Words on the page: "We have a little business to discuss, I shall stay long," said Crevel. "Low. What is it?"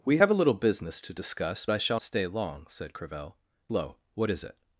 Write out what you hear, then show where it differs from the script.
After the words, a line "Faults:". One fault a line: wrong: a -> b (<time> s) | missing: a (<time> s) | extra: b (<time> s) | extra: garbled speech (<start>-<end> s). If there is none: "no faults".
"We have a little business to discuss, I shall stay long," said Crevel. "Low. What is it?"
Faults:
no faults